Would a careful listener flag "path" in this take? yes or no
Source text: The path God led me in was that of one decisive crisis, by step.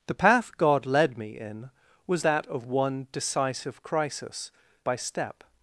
no